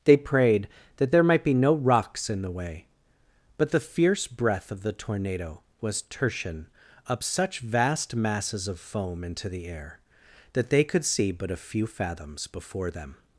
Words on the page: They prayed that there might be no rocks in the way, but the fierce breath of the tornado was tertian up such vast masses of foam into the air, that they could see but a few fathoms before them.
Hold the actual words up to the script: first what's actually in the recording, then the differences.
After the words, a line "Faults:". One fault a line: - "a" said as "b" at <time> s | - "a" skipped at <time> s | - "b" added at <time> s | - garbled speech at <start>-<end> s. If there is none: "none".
They prayed that there might be no rocks in the way, but the fierce breath of the tornado was tertian up such vast masses of foam into the air, that they could see but a few fathoms before them.
Faults:
none